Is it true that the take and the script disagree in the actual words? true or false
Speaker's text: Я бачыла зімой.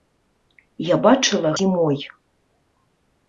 false